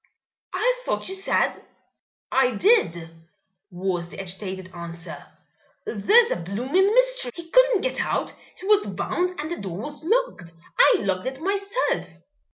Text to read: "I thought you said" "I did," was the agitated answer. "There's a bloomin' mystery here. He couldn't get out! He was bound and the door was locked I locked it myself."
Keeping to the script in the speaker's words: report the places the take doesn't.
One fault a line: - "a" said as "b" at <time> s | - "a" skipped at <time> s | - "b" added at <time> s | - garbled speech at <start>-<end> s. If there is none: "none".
- "here" skipped at 7.3 s